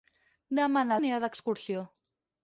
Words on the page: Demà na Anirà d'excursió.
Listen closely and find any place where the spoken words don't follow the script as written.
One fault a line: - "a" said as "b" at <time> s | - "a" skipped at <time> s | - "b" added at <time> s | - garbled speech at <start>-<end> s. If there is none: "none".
none